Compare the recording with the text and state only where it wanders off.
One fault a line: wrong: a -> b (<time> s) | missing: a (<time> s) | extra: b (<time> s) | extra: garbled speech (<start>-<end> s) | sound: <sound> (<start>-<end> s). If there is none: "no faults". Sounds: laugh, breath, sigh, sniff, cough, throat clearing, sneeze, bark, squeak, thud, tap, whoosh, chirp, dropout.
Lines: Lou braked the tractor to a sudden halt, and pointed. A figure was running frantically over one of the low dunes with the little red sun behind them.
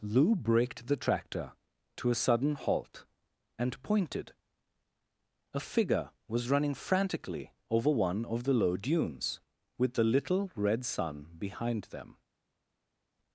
no faults